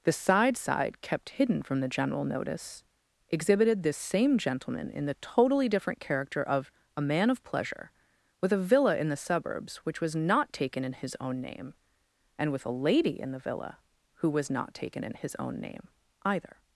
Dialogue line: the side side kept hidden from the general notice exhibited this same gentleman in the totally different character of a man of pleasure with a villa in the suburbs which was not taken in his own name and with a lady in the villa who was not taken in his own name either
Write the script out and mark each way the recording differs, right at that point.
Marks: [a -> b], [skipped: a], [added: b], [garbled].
the side side kept hidden from the general notice exhibited this same gentleman in the totally different character of a man of pleasure with a villa in the suburbs which was not taken in his own name and with a lady in the villa who was not taken in his own name either